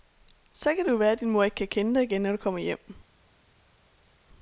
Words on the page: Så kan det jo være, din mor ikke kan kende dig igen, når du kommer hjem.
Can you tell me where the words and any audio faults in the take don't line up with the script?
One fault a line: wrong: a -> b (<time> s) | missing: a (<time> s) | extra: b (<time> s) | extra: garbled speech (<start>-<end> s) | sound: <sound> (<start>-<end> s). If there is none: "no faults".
no faults